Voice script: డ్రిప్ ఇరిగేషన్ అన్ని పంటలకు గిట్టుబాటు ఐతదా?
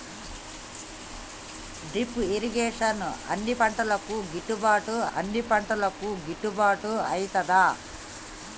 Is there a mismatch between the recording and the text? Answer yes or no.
yes